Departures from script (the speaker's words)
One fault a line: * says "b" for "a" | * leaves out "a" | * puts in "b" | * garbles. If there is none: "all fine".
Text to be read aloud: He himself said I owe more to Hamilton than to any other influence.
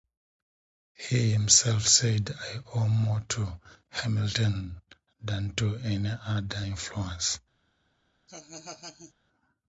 all fine